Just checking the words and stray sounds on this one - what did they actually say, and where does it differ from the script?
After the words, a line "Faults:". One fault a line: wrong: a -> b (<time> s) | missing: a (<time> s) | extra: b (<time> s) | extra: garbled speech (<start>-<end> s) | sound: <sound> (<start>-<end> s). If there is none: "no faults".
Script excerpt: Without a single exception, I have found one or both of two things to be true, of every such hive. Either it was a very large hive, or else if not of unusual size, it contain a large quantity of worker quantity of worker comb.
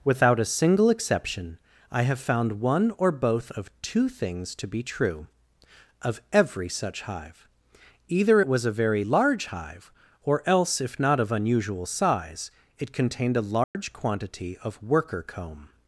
Without a single exception, I have found one or both of two things to be true, of every such hive. Either it was a very large hive, or else if not of unusual size, it contained a large quantity of worker comb.
Faults:
wrong: contain -> contained (12.9 s)
sound: dropout (13.6-13.7 s)
missing: quantity of worker (15.2 s)